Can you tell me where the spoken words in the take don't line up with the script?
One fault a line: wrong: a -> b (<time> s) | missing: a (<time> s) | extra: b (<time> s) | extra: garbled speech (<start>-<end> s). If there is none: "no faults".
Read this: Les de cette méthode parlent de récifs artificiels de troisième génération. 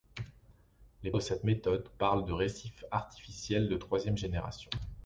no faults